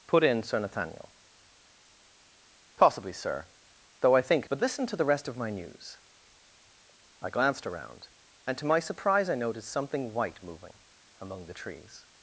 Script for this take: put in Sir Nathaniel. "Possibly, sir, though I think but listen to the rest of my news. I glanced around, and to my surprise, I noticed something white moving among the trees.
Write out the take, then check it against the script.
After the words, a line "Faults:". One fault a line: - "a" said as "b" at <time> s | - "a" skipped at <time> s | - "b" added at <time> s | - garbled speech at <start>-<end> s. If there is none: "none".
put in Sir Nathaniel. "Possibly, sir, though I think but listen to the rest of my news. I glanced around, and to my surprise, I noticed something white moving among the trees.
Faults:
none